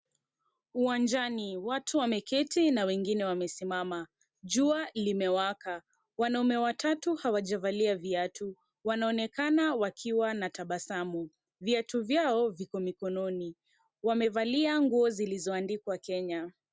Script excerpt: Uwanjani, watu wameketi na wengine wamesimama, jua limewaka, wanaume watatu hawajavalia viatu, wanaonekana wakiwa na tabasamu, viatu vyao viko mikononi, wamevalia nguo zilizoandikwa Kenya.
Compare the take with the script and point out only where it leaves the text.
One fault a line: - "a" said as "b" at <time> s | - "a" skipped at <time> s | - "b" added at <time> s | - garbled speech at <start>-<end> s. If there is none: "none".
none